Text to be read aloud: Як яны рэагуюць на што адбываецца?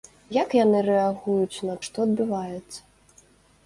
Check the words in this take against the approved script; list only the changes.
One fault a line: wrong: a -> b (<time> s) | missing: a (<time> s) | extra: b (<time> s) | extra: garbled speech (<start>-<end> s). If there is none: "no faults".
no faults